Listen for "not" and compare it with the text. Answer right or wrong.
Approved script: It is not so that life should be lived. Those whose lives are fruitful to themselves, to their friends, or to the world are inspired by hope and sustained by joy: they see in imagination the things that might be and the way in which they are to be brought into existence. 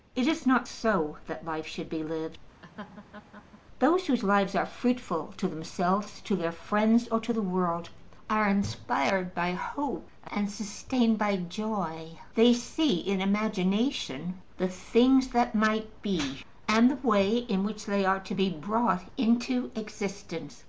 right